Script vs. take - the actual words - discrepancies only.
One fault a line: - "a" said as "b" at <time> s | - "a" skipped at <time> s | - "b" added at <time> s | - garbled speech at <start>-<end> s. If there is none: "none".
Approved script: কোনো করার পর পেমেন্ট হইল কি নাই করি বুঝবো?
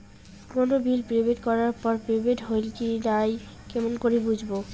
- "বিল পেমেন্ট" added at 0.8 s
- "কেমন" added at 3.7 s